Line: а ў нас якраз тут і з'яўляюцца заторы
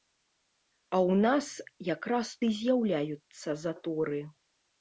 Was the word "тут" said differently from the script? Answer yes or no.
yes